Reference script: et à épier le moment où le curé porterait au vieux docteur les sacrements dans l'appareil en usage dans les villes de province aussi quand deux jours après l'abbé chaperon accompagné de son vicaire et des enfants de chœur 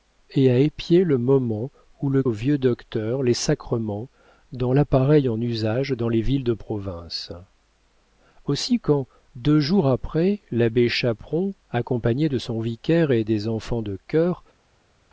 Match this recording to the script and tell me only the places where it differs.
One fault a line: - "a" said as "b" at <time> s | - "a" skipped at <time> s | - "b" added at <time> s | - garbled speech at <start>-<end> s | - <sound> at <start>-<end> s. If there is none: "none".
- "curé porterait" skipped at 2.2 s